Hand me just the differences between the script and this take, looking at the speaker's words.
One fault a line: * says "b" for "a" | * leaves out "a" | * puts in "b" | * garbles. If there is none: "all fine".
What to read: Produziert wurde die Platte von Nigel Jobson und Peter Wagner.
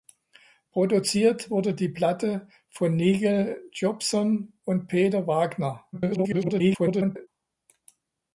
* garbles